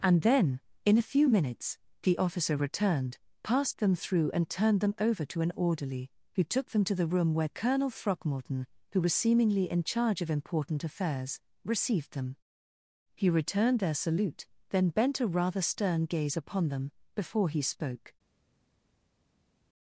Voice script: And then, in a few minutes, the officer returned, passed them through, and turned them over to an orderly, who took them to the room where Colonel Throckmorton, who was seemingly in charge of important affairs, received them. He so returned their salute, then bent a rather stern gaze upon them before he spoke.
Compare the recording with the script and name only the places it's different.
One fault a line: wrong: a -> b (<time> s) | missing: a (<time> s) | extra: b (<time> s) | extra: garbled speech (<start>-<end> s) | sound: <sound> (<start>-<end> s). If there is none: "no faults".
missing: so (13.3 s)